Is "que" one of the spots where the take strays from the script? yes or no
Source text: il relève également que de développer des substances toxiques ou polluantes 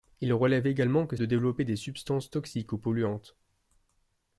no